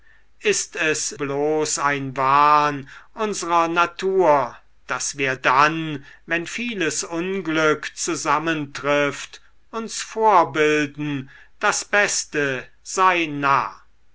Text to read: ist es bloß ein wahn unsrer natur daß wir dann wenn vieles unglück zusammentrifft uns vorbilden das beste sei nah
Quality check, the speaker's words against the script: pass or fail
pass